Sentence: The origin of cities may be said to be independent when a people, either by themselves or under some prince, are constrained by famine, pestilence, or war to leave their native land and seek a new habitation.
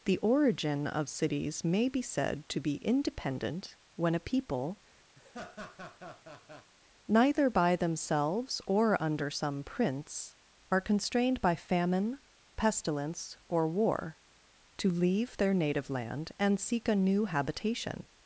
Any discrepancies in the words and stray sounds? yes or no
yes